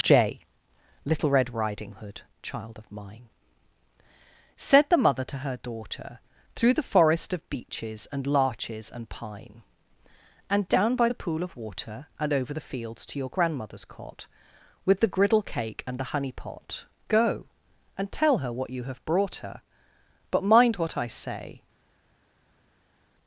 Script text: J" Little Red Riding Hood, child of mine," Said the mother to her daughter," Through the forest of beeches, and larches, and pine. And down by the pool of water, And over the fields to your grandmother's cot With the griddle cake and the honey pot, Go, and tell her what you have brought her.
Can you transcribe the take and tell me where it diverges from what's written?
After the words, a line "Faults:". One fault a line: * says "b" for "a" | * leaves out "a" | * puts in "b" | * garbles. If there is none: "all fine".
J" Little Red Riding Hood, child of mine," Said the mother to her daughter," Through the forest of beeches, and larches, and pine. And down by the pool of water, And over the fields to your grandmother's cot With the griddle cake and the honey pot, Go, and tell her what you have brought her. But mind what I say
Faults:
* puts in "But mind what I say"